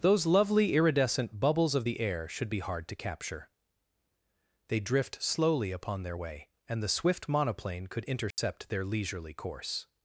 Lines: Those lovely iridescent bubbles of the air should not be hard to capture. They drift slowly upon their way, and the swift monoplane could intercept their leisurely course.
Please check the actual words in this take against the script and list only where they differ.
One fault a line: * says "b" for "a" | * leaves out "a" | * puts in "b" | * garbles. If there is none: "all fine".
* leaves out "not"